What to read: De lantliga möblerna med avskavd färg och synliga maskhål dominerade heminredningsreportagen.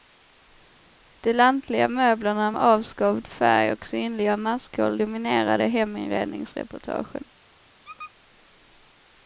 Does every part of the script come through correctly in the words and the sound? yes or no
no